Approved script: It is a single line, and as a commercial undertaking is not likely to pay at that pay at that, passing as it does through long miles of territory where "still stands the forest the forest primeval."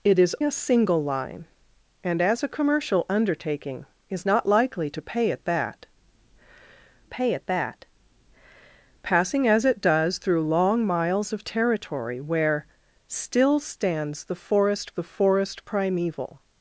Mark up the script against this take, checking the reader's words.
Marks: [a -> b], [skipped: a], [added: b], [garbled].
It is a single line, and as a commercial undertaking is not likely to pay at that pay at that, passing as it does through long miles of territory where "still stands the forest the forest primeval."